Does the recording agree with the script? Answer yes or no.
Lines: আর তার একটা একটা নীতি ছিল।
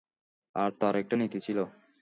no